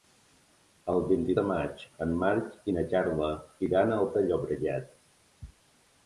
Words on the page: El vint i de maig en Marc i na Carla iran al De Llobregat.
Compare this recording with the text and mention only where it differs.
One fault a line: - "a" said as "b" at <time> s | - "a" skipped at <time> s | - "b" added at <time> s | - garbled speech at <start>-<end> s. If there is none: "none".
none